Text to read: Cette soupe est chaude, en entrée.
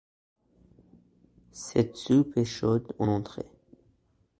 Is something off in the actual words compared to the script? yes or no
no